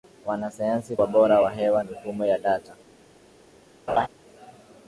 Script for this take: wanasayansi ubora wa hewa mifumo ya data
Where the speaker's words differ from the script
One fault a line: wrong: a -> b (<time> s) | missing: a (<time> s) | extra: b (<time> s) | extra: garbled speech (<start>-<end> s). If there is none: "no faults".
no faults